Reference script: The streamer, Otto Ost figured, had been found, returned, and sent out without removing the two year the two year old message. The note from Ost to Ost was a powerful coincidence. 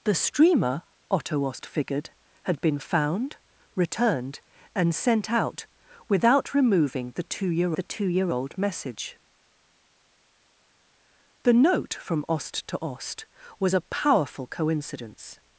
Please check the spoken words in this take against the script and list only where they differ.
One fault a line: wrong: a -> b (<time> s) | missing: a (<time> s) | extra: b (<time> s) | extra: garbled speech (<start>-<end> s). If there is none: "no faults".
no faults